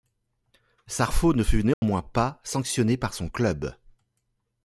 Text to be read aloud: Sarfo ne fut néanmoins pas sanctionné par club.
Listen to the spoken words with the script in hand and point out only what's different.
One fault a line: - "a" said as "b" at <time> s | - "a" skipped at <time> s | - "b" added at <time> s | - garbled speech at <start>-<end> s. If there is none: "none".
- "son" added at 3.1 s